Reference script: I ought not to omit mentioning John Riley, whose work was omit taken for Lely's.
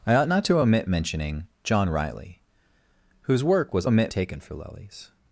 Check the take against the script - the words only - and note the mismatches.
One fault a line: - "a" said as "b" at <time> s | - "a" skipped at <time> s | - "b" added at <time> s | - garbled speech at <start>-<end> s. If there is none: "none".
none